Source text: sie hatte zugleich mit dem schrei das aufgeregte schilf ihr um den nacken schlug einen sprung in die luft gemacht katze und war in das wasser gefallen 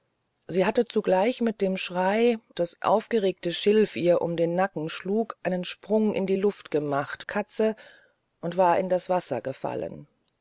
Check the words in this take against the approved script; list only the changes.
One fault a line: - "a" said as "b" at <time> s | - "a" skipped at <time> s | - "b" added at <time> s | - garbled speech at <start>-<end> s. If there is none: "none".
none